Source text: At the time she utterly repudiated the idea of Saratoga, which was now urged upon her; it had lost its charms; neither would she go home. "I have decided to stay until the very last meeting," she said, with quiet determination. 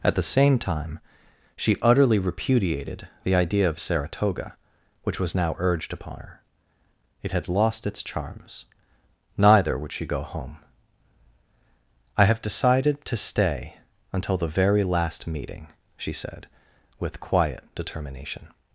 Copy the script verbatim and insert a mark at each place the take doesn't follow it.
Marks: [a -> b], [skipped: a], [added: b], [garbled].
At the [added: same] time she utterly repudiated the idea of Saratoga, which was now urged upon her; it had lost its charms; neither would she go home. "I have decided to stay until the very last meeting," she said, with quiet determination.